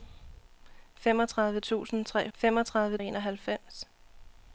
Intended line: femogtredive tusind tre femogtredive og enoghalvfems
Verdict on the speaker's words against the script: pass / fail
pass